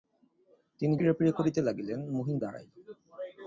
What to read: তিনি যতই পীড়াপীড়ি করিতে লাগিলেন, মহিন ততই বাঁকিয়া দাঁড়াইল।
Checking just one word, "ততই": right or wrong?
wrong